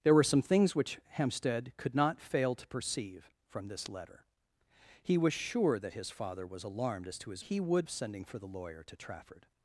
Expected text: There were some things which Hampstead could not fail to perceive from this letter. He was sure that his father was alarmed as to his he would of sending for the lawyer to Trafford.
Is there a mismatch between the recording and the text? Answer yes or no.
no